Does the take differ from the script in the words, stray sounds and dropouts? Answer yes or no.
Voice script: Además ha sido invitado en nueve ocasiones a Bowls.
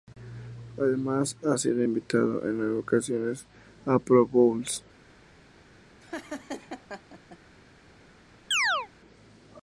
yes